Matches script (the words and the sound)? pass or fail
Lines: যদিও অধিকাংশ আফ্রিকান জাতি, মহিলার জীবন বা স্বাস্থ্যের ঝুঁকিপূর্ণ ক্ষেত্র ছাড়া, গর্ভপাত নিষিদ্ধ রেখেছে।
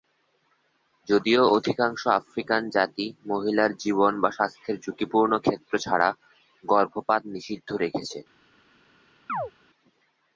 fail